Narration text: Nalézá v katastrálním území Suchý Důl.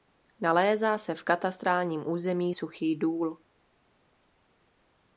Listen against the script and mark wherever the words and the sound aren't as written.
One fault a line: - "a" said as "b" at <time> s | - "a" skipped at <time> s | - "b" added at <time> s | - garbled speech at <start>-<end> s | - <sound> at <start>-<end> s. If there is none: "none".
- "se" added at 1.0 s